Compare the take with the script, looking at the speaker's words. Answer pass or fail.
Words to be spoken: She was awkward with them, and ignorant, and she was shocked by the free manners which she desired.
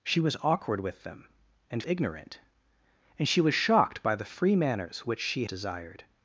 pass